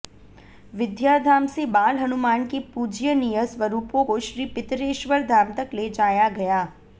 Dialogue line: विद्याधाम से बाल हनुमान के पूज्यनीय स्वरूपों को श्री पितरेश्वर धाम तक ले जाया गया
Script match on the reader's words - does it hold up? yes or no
yes